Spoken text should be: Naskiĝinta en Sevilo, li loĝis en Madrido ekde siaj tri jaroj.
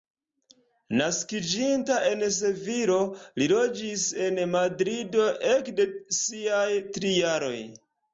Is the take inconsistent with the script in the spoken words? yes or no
no